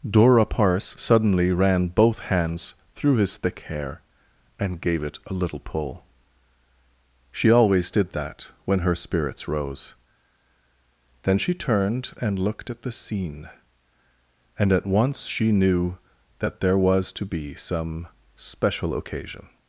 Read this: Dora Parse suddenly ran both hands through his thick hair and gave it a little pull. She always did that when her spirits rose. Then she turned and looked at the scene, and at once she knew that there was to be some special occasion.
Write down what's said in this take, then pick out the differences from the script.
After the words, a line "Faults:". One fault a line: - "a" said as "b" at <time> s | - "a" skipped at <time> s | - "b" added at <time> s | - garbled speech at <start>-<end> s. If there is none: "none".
Dora Parse suddenly ran both hands through his thick hair and gave it a little pull. She always did that when her spirits rose. Then she turned and looked at the scene, and at once she knew that there was to be some special occasion.
Faults:
none